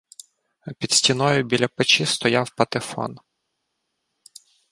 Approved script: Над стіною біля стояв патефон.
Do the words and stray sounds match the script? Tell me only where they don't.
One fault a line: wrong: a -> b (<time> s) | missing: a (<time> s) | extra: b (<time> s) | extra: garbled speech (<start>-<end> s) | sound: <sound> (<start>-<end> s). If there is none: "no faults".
wrong: Над -> Під (0.8 s)
extra: печі (1.7 s)